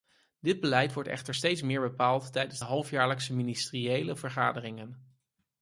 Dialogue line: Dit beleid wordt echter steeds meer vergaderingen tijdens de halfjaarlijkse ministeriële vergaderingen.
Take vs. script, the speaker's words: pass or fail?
fail